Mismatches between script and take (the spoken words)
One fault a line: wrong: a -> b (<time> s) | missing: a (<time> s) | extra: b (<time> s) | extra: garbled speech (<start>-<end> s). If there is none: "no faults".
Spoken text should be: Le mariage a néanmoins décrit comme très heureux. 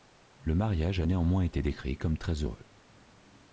extra: été (1.4 s)